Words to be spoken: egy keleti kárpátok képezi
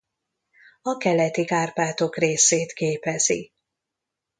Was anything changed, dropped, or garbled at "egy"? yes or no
yes